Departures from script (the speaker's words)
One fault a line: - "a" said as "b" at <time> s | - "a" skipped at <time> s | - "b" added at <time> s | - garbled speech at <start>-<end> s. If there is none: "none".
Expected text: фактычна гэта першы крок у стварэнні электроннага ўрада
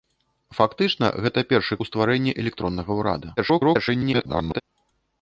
- "крок" skipped at 1.8 s
- garbled speech at 3.4-4.6 s